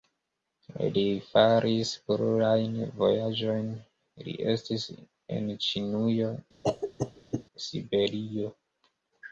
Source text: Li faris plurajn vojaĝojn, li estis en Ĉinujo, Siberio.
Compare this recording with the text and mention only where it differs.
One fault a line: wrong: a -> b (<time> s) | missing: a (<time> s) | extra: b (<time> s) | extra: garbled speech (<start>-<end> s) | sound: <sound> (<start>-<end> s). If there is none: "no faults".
sound: cough (6.6-7.4 s)